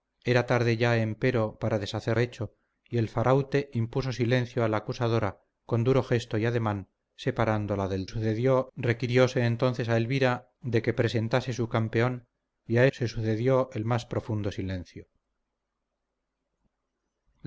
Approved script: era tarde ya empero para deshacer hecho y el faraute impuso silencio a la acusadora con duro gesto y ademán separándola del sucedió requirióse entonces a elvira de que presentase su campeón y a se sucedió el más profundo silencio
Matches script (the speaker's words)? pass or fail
pass